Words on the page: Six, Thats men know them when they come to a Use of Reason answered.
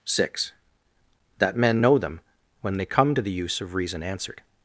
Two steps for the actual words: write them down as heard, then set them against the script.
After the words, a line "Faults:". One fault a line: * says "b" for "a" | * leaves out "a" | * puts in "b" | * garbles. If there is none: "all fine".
Six, That men know them when they come to the Use of Reason answered.
Faults:
* says "That" for "Thats"
* says "the" for "a"